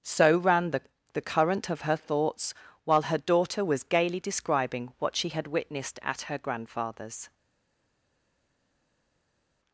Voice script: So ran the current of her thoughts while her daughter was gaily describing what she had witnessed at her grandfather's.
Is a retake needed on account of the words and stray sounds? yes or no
yes